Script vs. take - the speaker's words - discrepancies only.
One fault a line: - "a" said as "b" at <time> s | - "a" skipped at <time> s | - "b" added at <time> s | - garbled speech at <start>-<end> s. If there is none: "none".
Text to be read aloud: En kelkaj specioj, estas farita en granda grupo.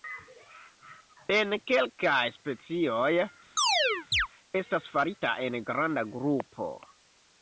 none